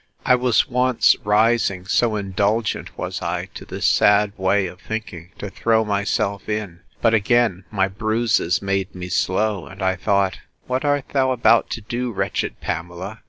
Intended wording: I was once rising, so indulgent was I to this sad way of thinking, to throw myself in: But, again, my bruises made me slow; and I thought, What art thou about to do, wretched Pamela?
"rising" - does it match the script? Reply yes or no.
yes